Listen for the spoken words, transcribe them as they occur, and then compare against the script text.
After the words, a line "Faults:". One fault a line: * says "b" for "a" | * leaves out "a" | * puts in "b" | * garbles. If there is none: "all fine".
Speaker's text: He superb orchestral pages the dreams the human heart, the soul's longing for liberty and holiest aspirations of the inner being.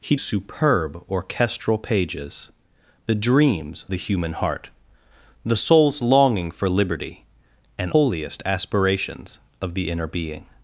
He superb orchestral pages the dreams the human heart, the soul's longing for liberty and holiest aspirations of the inner being.
Faults:
all fine